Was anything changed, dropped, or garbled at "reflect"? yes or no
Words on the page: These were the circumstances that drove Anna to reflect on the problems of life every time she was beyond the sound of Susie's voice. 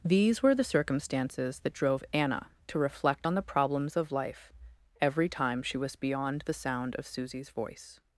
no